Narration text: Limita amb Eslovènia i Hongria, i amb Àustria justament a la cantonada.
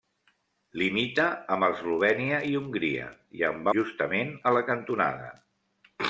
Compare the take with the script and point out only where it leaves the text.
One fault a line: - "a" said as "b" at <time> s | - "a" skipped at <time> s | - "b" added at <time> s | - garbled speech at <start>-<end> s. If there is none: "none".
- "Àustria" skipped at 3.7 s